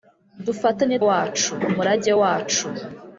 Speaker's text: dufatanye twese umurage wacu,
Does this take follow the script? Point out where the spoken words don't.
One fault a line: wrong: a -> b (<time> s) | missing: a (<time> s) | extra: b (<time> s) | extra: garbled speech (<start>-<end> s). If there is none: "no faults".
wrong: twese -> wacu (1.1 s)